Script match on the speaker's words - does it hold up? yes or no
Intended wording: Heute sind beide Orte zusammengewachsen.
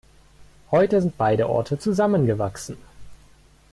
yes